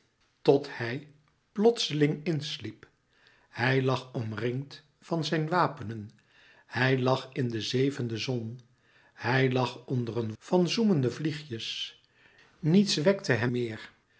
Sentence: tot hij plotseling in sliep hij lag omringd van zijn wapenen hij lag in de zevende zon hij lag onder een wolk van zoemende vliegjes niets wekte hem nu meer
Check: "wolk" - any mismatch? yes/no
yes